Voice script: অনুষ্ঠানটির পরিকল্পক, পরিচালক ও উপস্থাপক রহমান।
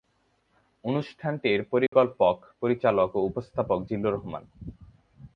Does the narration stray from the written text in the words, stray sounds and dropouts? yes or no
yes